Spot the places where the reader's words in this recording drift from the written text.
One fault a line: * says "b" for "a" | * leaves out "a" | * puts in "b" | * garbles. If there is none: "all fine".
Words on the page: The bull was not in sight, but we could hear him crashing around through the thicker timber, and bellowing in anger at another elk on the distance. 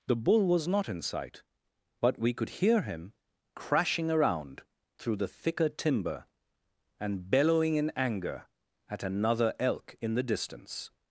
* says "in" for "on"